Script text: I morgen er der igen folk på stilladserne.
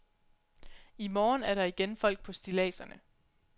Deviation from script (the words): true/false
false